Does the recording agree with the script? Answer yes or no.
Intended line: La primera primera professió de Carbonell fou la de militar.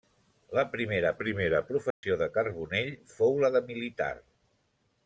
yes